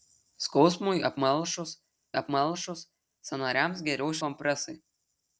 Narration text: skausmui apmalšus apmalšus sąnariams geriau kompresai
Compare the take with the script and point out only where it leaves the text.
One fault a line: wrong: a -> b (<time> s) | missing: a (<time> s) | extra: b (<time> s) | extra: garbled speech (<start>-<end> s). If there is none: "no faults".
no faults